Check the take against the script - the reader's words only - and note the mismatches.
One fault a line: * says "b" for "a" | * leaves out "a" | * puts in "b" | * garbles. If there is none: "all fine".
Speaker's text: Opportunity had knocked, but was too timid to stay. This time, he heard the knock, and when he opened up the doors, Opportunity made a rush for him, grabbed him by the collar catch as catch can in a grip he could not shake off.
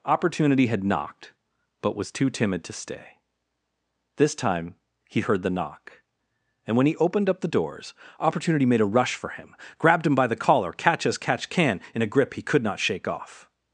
all fine